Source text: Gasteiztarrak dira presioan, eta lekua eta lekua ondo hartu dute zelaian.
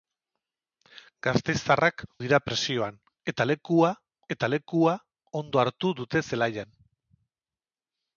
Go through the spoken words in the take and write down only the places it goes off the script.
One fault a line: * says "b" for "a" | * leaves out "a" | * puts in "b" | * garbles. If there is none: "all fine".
all fine